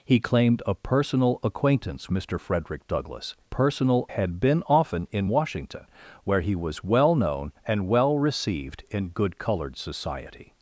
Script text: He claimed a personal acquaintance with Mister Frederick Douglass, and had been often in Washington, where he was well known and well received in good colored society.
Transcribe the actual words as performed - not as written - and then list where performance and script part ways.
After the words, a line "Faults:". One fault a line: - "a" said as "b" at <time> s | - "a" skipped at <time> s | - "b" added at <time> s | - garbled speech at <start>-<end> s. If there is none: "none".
He claimed a personal acquaintance Mister Frederick Douglass, personal had been often in Washington, where he was well known and well received in good colored society.
Faults:
- "with" skipped at 2.1 s
- "and" said as "personal" at 3.4 s